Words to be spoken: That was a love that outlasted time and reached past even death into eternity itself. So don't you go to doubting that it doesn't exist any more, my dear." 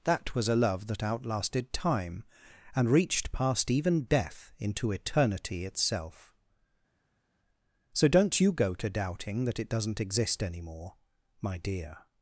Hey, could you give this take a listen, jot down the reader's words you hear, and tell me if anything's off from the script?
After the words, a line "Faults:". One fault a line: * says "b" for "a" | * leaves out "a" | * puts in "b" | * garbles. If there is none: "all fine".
That was a love that outlasted time and reached past even death into eternity itself. So don't you go to doubting that it doesn't exist any more, my dear."
Faults:
all fine